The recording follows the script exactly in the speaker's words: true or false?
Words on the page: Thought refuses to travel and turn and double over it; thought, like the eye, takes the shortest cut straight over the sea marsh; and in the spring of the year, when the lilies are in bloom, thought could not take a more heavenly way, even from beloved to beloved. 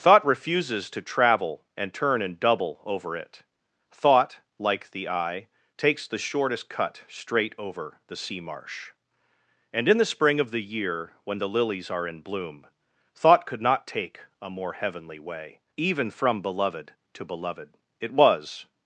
false